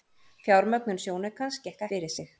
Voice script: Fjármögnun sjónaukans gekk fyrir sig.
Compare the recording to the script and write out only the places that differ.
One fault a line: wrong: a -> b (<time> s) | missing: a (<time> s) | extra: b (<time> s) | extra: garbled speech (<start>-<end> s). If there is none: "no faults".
no faults